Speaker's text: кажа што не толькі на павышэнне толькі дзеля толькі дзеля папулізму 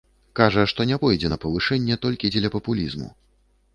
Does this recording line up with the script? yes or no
no